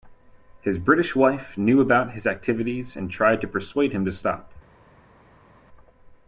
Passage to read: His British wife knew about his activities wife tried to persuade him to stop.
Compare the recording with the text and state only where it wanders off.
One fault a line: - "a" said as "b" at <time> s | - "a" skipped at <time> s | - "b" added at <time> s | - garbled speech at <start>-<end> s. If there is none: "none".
- "wife" said as "and" at 3.0 s